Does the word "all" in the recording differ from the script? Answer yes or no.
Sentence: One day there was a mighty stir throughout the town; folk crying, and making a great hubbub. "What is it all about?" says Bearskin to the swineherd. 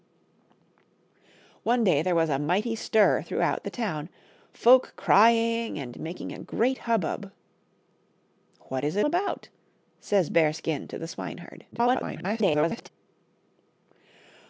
yes